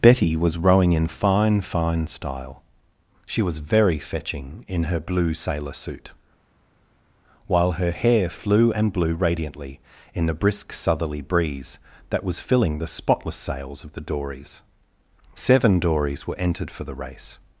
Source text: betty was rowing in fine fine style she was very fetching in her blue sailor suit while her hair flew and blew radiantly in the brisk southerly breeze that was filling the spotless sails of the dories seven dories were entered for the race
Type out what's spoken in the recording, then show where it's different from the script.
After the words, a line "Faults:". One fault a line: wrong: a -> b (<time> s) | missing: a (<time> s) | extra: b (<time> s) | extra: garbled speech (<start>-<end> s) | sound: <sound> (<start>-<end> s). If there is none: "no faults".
betty was rowing in fine fine style she was very fetching in her blue sailor suit while her hair flew and blew radiantly in the brisk southerly breeze that was filling the spotless sails of the dories seven dories were entered for the race
Faults:
no faults